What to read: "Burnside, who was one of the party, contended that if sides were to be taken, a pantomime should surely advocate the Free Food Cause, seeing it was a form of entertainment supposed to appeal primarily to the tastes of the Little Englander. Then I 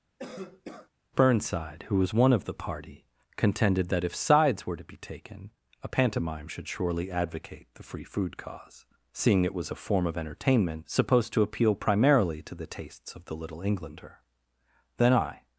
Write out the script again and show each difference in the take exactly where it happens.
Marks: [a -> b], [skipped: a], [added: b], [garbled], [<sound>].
[cough] "Burnside, who was one of the party, contended that if sides were to be taken, a pantomime should surely advocate the Free Food Cause, seeing it was a form of entertainment supposed to appeal primarily to the tastes of the Little Englander. Then I